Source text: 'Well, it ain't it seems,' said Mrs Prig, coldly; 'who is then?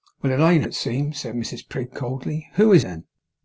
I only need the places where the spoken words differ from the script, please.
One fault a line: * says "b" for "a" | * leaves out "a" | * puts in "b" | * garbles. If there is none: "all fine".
all fine